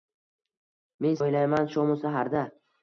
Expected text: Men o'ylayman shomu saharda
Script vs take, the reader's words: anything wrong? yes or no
no